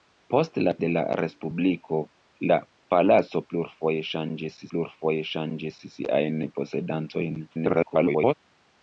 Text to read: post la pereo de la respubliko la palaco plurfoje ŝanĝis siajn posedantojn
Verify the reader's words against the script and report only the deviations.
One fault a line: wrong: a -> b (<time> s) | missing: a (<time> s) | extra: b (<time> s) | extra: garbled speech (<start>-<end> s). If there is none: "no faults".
missing: pereo (0.7 s)
extra: plurfoje ŝanĝis (4.7 s)
extra: garbled speech (7.5-8.3 s)